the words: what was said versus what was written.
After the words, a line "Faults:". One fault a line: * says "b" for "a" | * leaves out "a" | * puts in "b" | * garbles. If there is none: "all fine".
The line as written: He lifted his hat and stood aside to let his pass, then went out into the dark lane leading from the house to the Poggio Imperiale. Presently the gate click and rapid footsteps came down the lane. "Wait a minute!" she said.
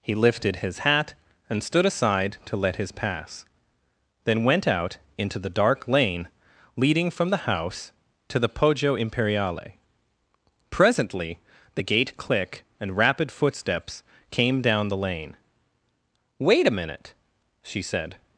He lifted his hat and stood aside to let his pass, then went out into the dark lane leading from the house to the Poggio Imperiale. Presently the gate click and rapid footsteps came down the lane. "Wait a minute!" she said.
Faults:
all fine